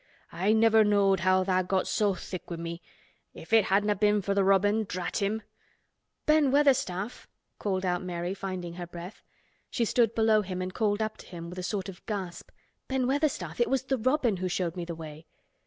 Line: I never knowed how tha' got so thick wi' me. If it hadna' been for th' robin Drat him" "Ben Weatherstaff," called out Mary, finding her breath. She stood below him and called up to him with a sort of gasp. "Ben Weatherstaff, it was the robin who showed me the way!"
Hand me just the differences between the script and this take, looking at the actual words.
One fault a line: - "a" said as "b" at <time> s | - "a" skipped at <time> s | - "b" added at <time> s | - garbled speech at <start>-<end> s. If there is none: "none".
none